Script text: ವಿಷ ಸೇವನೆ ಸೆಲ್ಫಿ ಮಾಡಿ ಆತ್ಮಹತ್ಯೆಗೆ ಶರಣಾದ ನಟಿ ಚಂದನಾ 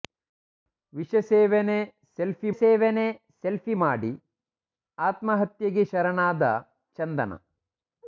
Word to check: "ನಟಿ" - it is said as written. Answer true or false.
false